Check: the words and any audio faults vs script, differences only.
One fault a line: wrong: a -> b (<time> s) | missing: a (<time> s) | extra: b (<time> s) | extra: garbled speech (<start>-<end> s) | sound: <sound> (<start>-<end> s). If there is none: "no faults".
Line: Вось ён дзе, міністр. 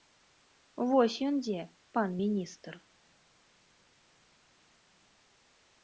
extra: пан (2.0 s)